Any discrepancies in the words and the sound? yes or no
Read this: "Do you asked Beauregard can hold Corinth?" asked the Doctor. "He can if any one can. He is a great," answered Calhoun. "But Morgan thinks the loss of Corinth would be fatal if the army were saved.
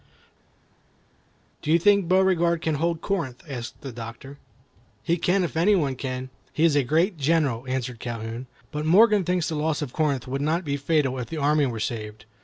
yes